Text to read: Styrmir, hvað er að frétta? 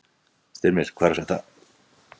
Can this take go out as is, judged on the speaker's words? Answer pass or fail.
pass